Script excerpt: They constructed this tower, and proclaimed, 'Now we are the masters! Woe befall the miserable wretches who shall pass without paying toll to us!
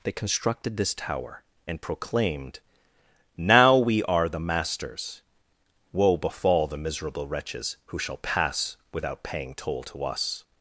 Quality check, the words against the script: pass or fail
pass